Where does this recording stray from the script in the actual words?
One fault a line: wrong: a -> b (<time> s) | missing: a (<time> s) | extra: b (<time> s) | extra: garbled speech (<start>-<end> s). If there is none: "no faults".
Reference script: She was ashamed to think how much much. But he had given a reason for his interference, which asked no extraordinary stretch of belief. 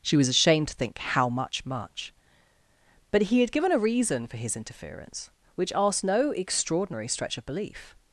no faults